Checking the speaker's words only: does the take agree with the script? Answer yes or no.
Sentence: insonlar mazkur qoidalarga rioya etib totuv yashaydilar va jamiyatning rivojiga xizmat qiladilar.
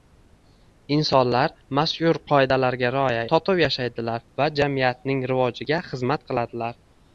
no